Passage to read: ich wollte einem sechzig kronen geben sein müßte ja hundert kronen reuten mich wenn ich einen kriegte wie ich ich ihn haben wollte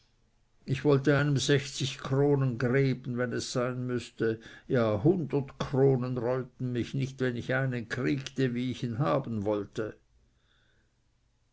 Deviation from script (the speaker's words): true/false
true